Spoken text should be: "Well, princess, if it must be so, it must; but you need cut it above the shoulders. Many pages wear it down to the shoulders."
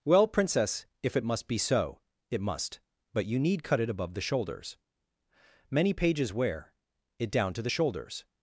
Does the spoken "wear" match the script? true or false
true